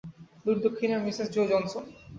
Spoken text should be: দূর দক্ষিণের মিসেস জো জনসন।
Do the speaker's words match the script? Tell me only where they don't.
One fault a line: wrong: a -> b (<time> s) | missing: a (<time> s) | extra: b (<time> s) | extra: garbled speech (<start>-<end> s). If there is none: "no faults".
no faults